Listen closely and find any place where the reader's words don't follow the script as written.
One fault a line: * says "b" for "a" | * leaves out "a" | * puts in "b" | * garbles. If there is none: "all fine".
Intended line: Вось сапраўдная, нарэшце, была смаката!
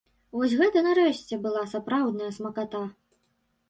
* says "гэта" for "сапраўдная"
* puts in "сапраўдная"